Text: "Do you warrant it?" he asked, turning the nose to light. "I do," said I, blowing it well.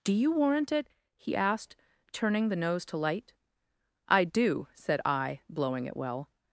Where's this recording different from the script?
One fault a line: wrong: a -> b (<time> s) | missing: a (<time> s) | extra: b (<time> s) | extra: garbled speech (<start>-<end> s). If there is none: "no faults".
no faults